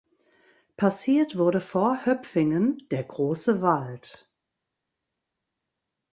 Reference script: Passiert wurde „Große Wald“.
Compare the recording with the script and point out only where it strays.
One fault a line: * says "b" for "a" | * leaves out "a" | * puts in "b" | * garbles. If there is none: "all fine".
* puts in "vor Höpfingen der"